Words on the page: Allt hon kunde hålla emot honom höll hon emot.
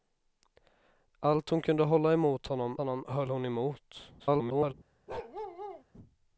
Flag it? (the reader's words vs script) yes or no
yes